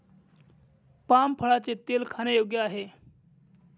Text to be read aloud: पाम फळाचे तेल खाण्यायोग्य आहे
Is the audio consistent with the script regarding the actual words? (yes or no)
yes